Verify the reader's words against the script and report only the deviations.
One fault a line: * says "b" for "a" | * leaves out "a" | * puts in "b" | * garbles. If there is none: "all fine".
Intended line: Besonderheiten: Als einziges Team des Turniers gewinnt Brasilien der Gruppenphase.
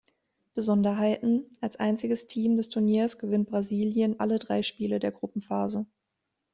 * puts in "alle drei Spiele"